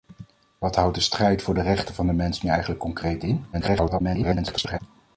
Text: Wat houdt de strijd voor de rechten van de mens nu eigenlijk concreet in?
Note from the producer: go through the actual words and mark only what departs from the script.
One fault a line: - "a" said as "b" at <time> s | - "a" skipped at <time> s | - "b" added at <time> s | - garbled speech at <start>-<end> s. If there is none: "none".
- garbled speech at 3.5-4.8 s